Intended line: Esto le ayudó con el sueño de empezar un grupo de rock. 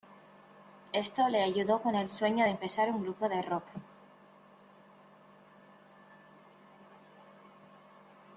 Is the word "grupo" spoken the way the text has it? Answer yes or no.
yes